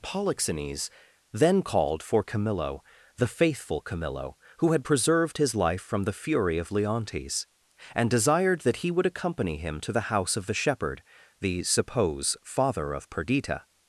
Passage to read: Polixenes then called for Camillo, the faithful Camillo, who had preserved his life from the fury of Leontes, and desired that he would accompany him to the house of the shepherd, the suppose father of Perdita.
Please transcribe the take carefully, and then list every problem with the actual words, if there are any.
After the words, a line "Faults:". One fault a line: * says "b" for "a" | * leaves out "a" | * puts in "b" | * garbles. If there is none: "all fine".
Polixenes then called for Camillo, the faithful Camillo, who had preserved his life from the fury of Leontes, and desired that he would accompany him to the house of the shepherd, the suppose father of Perdita.
Faults:
all fine